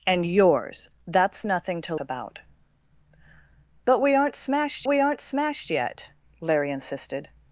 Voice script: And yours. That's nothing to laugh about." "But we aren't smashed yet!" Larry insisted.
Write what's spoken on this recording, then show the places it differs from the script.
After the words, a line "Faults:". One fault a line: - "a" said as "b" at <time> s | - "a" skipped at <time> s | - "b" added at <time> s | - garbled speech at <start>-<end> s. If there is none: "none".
And yours. That's nothing to about." "But we aren't smashed we aren't smashed yet!" Larry insisted.
Faults:
- "laugh" skipped at 1.9 s
- "we aren't smashed" added at 4.9 s